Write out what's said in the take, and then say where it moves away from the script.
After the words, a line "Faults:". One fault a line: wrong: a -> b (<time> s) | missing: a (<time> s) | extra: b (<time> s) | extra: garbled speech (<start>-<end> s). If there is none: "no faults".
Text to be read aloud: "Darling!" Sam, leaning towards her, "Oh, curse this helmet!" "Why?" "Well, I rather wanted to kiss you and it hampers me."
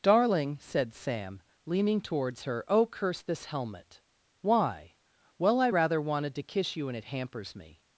"Darling!" said Sam, leaning towards her, "Oh, curse this helmet!" "Why?" "Well, I rather wanted to kiss you and it hampers me."
Faults:
extra: said (0.6 s)